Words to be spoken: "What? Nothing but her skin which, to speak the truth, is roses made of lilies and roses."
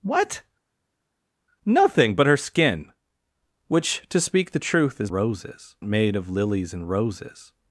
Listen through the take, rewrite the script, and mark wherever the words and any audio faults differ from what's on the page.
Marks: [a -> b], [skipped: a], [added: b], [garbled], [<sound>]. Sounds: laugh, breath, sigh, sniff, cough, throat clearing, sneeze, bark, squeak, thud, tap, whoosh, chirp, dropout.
"What? Nothing but her skin which, to speak the truth, is roses made of lilies and roses."